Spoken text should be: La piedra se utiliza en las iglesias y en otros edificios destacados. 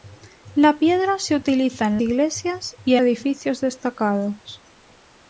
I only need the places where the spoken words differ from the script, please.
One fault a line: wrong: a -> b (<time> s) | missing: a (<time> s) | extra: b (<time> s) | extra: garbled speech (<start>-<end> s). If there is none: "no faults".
missing: las (2.0 s)
missing: en otros (3.0 s)